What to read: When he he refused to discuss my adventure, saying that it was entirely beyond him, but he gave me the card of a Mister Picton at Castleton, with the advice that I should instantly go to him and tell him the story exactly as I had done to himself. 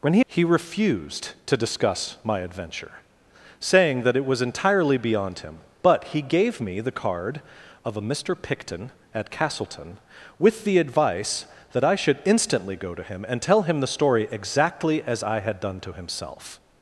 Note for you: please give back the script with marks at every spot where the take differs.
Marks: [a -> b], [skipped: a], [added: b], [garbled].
When he he refused to discuss my adventure, saying that it was entirely beyond him, but he gave me the card of a Mister Picton at Castleton, with the advice that I should instantly go to him and tell him the story exactly as I had done to himself.